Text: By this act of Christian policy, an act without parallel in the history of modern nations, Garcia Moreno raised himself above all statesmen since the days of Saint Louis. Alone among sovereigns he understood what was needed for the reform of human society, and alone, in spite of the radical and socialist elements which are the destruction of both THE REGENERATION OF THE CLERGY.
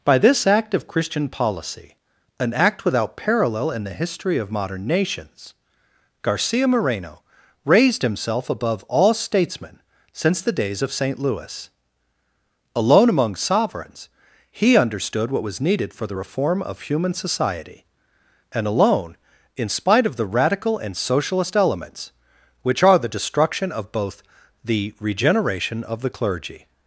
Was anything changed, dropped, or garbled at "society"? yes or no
no